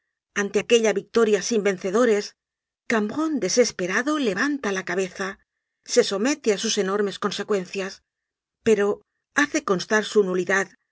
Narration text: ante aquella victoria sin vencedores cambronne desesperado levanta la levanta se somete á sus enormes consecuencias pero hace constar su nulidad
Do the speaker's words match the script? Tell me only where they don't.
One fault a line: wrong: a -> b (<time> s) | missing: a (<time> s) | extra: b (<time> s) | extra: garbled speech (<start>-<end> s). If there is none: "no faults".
wrong: levanta -> cabeza (4.9 s)